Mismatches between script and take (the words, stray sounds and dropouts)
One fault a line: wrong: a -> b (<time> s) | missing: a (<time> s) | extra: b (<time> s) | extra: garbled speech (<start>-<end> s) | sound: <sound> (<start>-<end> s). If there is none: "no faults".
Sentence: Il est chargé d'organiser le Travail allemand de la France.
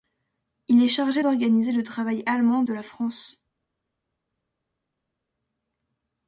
no faults